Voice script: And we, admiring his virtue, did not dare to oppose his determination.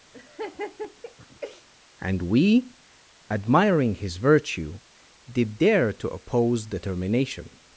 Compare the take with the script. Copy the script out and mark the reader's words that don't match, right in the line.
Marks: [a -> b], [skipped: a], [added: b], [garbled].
And we, admiring his virtue, did [skipped: not] dare to oppose [skipped: his] determination.